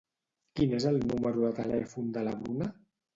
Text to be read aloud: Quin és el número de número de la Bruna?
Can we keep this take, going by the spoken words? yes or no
no